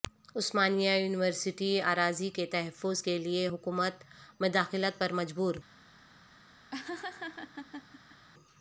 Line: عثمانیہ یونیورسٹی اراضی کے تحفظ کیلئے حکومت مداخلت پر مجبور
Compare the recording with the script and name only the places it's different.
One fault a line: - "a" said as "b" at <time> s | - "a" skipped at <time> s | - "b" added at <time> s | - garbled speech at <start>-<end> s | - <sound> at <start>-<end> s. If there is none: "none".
- laugh at 6.7-8.3 s